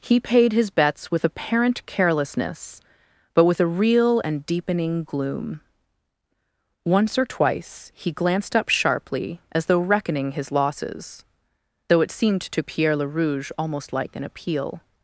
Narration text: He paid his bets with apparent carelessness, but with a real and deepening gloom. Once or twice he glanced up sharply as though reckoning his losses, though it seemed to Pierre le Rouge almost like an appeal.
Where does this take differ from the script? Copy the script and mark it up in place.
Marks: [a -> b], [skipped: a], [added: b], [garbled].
He paid his bets with apparent carelessness, but with a real and deepening gloom. Once or twice he glanced up sharply as though reckoning his losses, though it seemed to Pierre le Rouge almost like an appeal.